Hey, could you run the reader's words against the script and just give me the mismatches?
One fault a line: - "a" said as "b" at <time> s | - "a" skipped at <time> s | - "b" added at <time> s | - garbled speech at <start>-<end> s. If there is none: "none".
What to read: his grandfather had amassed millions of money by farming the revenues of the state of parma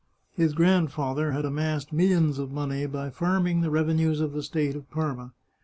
none